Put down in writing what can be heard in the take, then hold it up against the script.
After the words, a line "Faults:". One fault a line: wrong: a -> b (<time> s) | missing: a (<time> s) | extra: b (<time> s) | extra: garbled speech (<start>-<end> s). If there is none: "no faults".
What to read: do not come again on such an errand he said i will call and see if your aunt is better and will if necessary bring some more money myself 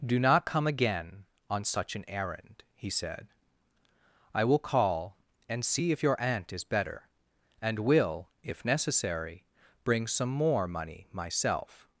do not come again on such an errand he said i will call and see if your aunt is better and will if necessary bring some more money myself
Faults:
no faults